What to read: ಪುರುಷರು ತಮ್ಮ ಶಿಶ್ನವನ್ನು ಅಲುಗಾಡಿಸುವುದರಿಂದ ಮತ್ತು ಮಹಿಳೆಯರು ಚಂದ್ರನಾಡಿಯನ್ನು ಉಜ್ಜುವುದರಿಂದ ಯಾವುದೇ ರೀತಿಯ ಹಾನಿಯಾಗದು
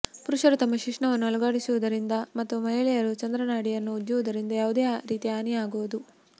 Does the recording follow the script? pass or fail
pass